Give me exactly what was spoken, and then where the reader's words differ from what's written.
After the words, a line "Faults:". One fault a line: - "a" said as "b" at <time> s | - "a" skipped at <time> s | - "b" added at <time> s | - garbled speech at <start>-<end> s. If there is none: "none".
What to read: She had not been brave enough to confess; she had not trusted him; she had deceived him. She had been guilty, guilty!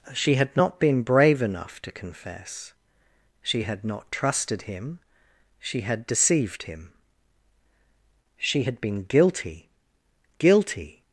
She had not been brave enough to confess; she had not trusted him; she had deceived him. She had been guilty, guilty!
Faults:
none